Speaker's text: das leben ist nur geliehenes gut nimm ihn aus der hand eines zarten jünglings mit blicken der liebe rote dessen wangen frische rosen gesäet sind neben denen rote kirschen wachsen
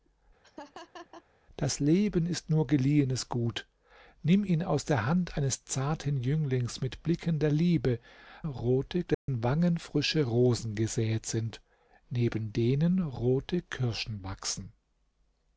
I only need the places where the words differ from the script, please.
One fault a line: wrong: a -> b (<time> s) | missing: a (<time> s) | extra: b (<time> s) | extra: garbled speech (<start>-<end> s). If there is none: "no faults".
no faults